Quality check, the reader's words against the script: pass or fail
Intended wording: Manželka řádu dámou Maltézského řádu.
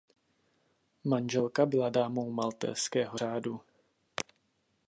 fail